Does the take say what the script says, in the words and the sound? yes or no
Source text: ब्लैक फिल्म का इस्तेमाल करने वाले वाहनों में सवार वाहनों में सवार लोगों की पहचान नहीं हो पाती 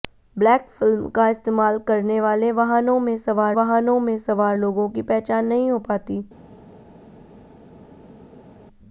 yes